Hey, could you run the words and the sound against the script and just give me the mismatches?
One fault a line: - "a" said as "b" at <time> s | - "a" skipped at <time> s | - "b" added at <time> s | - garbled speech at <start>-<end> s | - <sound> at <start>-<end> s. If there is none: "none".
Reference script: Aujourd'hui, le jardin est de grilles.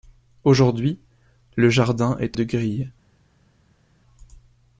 none